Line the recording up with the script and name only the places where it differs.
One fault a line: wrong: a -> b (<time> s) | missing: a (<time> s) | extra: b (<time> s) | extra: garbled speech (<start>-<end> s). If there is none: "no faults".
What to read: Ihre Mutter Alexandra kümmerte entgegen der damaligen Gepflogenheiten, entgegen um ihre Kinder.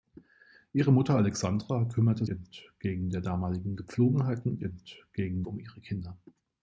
no faults